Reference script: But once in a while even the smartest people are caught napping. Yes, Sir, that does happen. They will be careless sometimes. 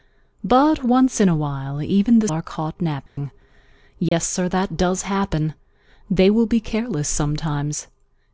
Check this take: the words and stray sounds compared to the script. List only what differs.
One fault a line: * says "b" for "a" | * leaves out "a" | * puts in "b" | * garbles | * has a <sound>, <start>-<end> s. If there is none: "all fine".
* leaves out "smartest people"
* has a dropout, 3.1-3.2 s
* has a dropout, 4.1-4.1 s